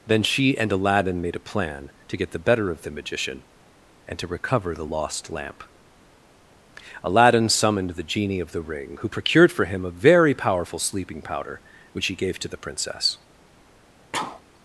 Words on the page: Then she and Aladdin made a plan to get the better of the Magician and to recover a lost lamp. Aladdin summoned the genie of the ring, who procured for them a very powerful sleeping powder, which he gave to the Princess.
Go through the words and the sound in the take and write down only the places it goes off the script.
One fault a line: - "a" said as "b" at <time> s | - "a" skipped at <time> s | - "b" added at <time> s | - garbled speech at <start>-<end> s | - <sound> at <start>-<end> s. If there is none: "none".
- "a" said as "the" at 4.7 s
- "them" said as "him" at 9.6 s
- sneeze at 14.1-14.4 s